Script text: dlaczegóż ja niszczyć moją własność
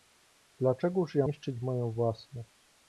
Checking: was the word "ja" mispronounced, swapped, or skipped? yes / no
no